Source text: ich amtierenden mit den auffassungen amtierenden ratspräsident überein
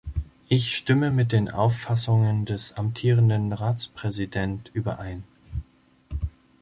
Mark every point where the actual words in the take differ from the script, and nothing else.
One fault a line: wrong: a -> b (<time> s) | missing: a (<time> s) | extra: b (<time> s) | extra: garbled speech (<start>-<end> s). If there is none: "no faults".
wrong: amtierenden -> stimme (0.7 s)
extra: des (2.5 s)